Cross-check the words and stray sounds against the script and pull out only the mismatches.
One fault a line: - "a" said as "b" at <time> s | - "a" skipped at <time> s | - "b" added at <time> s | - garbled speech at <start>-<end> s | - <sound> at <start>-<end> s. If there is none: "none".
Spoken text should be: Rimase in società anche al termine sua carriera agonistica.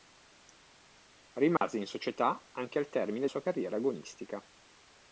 - dropout at 1.6-1.6 s